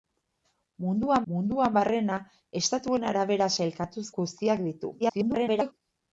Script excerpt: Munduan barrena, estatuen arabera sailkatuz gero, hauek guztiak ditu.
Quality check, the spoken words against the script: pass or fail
fail